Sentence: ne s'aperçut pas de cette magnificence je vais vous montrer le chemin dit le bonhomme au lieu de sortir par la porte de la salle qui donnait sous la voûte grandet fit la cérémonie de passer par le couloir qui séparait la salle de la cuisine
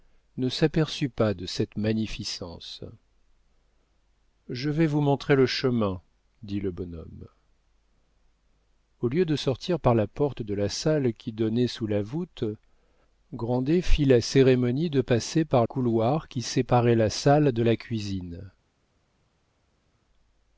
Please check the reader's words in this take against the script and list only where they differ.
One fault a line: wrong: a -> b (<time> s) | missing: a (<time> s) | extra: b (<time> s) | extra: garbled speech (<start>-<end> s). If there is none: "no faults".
missing: le (15.6 s)